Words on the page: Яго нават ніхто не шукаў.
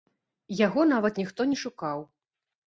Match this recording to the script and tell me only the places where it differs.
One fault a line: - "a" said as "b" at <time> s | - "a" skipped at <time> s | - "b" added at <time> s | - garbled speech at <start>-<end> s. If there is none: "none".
none